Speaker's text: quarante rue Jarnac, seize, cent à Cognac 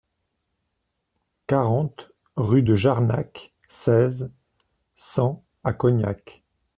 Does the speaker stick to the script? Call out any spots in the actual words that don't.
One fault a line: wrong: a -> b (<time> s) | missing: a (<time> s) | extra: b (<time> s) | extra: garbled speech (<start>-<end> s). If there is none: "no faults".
extra: de (2.6 s)